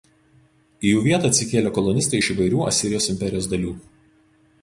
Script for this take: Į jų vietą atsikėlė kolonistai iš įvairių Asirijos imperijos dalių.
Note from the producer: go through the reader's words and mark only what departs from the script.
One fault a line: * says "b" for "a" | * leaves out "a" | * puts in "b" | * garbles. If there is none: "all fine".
all fine